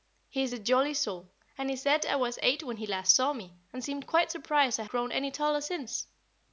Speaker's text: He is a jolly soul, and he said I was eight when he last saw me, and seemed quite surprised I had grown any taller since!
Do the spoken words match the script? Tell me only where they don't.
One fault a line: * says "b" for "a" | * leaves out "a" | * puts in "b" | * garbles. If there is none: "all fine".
* leaves out "had"